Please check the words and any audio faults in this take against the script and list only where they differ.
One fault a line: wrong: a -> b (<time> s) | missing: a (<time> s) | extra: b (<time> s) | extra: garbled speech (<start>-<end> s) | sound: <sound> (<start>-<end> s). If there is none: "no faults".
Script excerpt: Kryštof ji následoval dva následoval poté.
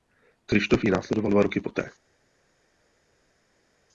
wrong: následoval -> roky (1.4 s)